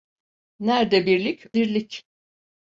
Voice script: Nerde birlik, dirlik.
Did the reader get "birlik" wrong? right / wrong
right